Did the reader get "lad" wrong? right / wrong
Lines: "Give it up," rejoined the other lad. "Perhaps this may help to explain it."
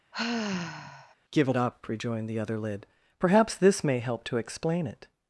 wrong